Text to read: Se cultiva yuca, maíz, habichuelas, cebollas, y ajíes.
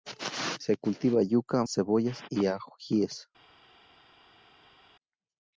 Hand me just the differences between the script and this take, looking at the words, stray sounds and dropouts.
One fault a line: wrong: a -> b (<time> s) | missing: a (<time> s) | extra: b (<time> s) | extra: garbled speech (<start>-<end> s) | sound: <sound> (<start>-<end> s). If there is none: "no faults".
missing: maíz habichuelas (1.6 s)